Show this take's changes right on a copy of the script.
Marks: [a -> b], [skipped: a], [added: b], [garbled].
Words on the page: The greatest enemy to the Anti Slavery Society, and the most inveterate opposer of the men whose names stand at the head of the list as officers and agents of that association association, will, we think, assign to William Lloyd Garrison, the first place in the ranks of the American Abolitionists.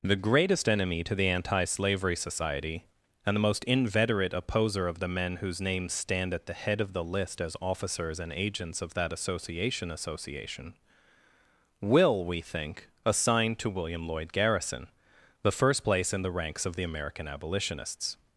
The greatest enemy to the Anti Slavery Society, and the most inveterate opposer of the men whose names stand at the head of the list as officers and agents of that association association, will, we think, assign to William Lloyd Garrison, the first place in the ranks of the American Abolitionists.